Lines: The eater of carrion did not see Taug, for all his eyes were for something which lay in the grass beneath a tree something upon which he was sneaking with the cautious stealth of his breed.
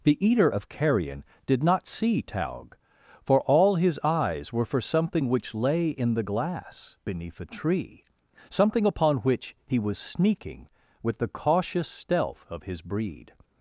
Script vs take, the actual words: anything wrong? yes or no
yes